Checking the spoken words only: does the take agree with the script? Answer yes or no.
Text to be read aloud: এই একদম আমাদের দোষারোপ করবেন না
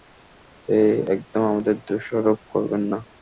yes